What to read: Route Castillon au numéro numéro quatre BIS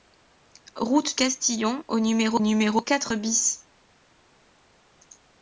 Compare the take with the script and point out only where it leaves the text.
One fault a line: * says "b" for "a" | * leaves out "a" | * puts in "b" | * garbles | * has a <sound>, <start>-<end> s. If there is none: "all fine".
all fine